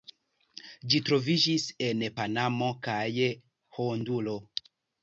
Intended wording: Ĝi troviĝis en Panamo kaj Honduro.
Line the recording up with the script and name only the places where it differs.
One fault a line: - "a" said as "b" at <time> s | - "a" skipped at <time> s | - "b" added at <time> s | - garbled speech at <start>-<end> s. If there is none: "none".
none